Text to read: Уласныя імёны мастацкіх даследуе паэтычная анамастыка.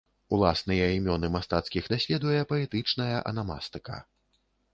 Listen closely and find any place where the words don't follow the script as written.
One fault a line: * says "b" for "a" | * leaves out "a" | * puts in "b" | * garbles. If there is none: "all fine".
all fine